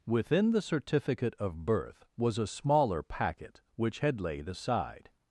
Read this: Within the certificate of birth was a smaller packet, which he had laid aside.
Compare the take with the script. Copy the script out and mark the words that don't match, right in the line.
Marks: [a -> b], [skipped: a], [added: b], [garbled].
Within the certificate of birth was a smaller packet, which [skipped: he] had laid aside.